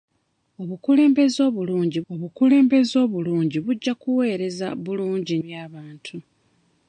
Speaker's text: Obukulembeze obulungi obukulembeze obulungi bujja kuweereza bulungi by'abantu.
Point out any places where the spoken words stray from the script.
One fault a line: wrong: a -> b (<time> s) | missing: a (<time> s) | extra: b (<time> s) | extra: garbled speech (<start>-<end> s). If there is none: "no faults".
no faults